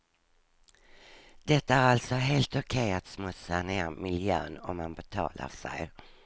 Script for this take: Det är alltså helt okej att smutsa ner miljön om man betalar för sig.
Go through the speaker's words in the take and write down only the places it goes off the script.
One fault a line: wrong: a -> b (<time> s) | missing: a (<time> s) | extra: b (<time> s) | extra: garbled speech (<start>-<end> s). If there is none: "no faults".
missing: för (5.5 s)